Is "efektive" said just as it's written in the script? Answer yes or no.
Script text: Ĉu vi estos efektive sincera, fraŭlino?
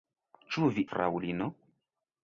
no